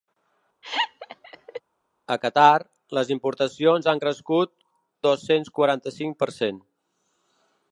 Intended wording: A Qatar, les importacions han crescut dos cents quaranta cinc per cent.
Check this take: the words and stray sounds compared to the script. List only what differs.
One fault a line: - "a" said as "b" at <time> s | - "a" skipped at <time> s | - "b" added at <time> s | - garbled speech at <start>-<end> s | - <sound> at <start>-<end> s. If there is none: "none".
- laugh at 0.6-1.6 s